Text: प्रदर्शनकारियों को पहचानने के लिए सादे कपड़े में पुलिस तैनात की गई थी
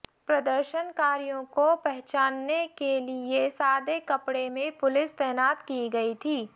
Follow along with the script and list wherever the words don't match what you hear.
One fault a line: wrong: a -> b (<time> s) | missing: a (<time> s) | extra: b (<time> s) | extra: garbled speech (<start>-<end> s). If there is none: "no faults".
no faults